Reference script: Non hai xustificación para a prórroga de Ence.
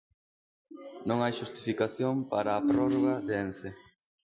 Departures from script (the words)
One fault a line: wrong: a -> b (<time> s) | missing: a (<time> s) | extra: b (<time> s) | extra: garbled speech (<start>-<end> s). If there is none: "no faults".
no faults